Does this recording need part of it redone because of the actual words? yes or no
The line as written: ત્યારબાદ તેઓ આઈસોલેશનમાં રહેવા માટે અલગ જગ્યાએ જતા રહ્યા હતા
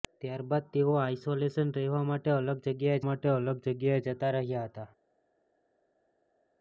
yes